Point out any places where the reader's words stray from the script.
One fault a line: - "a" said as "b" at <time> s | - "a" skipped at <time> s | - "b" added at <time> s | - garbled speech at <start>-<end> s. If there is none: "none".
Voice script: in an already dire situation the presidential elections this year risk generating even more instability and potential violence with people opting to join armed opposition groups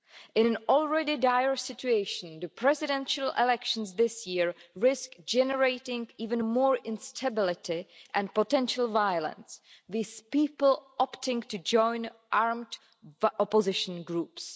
none